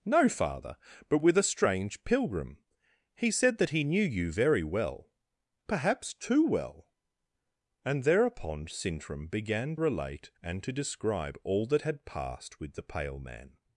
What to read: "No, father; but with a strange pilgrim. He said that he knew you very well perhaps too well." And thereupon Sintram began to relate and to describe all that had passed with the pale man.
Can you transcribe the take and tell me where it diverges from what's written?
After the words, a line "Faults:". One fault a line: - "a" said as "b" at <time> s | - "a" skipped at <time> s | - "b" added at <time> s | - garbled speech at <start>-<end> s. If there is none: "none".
"No, father; but with a strange pilgrim. He said that he knew you very well perhaps too well." And thereupon Sintram began relate and to describe all that had passed with the pale man.
Faults:
- "to" skipped at 9.8 s